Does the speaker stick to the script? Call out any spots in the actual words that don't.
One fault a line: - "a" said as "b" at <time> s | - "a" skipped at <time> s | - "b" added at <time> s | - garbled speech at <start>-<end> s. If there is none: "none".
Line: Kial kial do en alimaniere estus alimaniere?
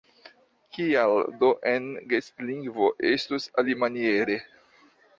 - "kial" skipped at 1.1 s
- "alimaniere" said as "gestlingvo" at 2.1 s